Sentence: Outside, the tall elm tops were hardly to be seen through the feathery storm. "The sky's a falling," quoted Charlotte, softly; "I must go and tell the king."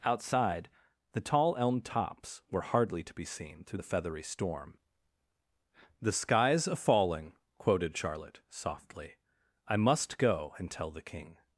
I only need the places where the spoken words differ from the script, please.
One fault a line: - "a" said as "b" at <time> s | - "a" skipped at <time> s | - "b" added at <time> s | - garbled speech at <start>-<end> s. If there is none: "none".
none